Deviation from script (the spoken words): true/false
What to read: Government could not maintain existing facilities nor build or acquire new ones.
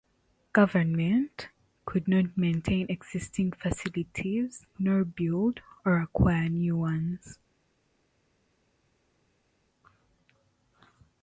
false